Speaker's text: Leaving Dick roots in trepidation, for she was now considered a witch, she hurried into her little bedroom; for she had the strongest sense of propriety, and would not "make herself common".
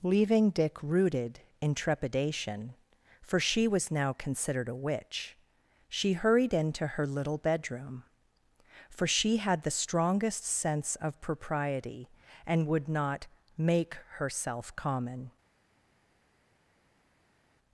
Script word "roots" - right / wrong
wrong